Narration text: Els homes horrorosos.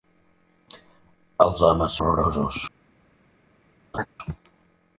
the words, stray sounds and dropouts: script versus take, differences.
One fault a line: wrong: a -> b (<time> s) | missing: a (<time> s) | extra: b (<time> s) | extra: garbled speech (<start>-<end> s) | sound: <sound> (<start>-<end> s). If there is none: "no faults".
sound: laugh (3.9-4.1 s)